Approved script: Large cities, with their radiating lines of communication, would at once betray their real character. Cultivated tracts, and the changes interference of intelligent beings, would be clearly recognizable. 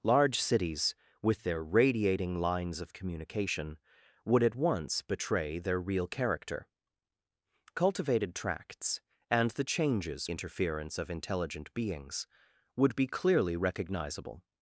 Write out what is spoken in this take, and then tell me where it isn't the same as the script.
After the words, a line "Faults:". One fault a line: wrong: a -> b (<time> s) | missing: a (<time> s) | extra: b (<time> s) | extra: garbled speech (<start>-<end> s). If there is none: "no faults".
Large cities, with their radiating lines of communication, would at once betray their real character. Cultivated tracts, and the changes interference of intelligent beings, would be clearly recognizable.
Faults:
no faults